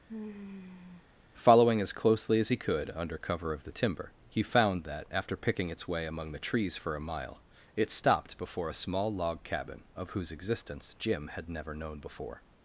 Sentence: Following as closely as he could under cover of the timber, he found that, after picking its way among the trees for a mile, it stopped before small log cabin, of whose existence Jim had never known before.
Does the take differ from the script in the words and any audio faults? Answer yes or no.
yes